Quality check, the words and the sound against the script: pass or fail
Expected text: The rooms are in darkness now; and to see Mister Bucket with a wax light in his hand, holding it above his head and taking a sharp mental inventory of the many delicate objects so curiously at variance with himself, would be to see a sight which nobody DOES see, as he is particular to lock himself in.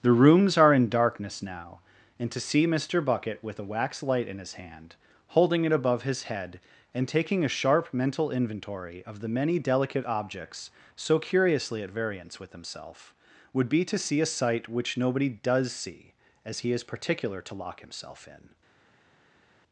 pass